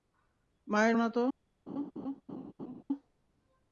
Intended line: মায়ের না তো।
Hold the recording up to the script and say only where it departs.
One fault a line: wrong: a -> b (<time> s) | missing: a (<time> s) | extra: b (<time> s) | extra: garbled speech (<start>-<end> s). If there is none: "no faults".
no faults